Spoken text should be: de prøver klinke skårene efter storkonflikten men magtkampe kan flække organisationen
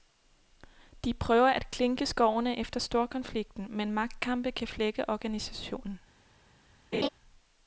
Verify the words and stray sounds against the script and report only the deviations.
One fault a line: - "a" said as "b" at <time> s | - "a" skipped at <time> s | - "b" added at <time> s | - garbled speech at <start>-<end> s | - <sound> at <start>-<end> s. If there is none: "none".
- "at" added at 1.5 s
- laugh at 6.9-7.1 s